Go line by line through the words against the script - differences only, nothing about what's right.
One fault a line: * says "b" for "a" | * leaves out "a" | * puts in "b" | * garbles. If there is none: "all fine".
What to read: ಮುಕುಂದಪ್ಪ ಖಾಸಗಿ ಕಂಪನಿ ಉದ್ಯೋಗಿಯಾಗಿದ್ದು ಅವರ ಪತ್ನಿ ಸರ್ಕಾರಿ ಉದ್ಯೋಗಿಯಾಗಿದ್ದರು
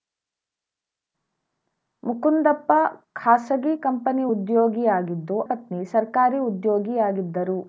* leaves out "ಅವರ"